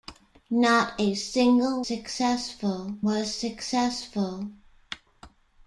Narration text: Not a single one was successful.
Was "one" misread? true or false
true